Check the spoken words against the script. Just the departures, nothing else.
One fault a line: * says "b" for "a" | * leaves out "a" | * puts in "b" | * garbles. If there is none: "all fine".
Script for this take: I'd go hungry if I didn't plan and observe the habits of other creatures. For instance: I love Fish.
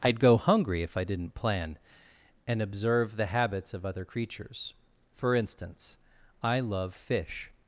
all fine